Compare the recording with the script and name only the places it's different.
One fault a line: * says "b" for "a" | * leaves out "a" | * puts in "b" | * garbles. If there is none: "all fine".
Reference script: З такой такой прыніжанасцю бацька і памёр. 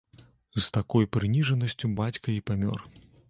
* leaves out "такой"